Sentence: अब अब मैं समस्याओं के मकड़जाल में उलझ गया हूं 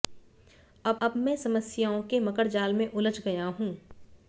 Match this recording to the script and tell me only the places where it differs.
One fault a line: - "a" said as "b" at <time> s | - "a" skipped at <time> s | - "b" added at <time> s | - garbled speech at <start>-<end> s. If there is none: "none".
none